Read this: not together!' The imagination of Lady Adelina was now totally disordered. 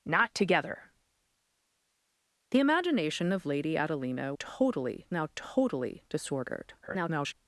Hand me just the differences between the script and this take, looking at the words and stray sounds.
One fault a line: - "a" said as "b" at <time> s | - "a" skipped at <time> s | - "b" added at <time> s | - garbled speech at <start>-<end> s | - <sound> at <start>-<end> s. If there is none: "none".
- "was" said as "totally" at 4.4 s
- garbled speech at 6.8-7.3 s